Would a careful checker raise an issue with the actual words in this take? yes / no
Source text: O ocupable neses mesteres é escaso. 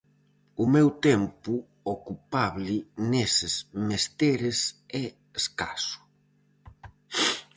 yes